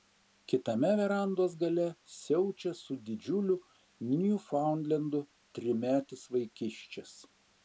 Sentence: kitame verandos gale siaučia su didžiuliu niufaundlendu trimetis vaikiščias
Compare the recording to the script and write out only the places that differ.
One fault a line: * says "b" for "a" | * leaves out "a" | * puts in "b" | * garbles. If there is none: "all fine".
all fine